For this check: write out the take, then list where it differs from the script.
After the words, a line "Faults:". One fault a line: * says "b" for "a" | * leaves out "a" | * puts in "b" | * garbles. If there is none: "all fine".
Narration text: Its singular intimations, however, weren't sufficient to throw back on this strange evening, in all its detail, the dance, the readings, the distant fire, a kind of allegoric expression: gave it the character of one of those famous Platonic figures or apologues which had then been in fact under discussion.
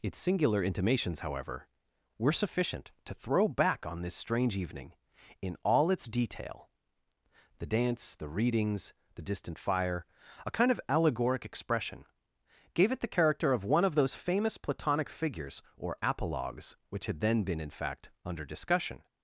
Its singular intimations, however, were sufficient to throw back on this strange evening, in all its detail, the dance, the readings, the distant fire, a kind of allegoric expression: gave it the character of one of those famous Platonic figures or apologues which had then been in fact under discussion.
Faults:
* says "were" for "weren't"